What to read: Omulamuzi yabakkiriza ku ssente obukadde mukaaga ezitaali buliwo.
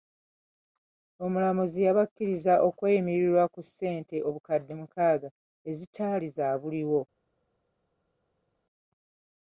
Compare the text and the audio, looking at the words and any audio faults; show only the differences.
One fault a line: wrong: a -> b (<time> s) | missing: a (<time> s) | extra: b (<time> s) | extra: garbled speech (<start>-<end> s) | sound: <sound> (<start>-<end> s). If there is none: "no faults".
extra: okweyimirirwa (2.7 s)
extra: za (6.4 s)